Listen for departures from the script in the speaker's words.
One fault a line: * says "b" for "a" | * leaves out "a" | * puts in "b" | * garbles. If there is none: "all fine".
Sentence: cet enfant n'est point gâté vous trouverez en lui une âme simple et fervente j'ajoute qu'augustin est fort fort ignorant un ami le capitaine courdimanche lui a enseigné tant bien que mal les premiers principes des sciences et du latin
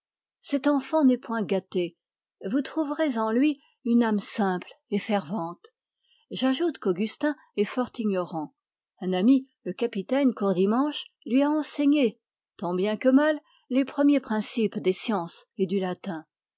* leaves out "fort"